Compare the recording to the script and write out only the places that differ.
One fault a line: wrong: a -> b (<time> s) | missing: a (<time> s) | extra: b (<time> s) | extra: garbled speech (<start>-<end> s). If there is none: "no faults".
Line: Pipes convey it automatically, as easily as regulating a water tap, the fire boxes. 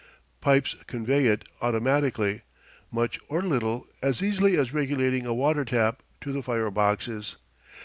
extra: much or little (2.9 s)
extra: to (6.2 s)